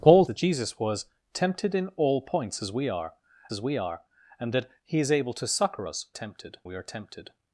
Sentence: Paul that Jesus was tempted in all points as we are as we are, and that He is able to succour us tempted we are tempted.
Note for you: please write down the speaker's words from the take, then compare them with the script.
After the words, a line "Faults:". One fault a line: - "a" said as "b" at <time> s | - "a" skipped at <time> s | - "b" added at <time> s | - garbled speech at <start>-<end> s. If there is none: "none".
Paul that Jesus was tempted in all points as we are as we are, and that He is able to succour us tempted we are tempted.
Faults:
none